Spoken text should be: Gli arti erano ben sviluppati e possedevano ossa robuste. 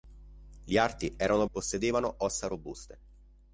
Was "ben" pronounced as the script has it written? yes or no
no